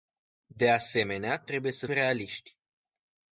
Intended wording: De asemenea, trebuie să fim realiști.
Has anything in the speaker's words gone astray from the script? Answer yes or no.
yes